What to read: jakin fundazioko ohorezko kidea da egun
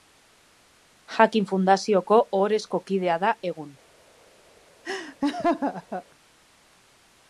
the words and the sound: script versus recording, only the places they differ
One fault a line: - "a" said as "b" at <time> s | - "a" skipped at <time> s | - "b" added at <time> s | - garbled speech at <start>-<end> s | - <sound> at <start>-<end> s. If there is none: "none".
- laugh at 4.8-6.0 s